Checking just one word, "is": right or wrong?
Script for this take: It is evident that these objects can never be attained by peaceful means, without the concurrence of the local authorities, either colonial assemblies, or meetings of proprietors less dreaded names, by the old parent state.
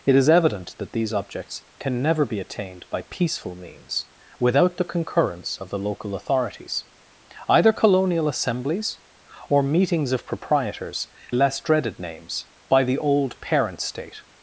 right